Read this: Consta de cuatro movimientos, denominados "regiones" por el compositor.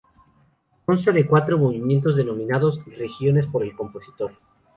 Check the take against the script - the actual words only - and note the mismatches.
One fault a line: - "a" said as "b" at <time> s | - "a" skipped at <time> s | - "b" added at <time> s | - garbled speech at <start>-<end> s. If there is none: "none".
none